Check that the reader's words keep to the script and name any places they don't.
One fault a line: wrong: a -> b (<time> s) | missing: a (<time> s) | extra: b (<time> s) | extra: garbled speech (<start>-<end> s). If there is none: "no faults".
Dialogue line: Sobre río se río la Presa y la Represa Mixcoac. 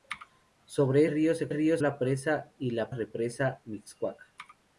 no faults